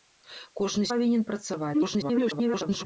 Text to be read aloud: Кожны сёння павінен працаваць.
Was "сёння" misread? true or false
true